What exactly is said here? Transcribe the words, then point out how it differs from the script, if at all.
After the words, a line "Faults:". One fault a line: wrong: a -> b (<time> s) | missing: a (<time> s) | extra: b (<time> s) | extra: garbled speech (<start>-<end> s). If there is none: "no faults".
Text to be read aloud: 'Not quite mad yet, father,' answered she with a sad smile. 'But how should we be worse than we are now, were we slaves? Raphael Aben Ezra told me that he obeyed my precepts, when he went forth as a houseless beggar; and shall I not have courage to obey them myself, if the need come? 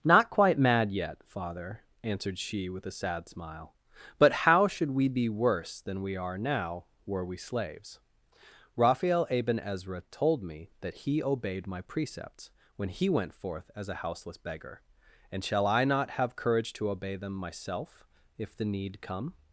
'Not quite mad yet, father,' answered she with a sad smile. 'But how should we be worse than we are now, were we slaves? Raphael Aben Ezra told me that he obeyed my precepts, when he went forth as a houseless beggar; and shall I not have courage to obey them myself, if the need come?
Faults:
no faults